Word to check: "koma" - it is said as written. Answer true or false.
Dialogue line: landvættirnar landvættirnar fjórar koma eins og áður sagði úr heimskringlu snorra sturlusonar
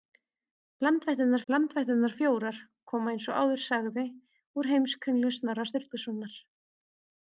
true